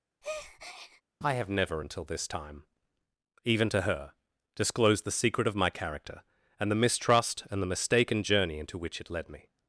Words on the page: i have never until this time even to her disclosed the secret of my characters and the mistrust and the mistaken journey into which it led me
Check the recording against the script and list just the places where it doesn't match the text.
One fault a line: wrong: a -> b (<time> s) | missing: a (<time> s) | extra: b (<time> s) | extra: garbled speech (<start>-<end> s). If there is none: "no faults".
wrong: characters -> character (5.7 s)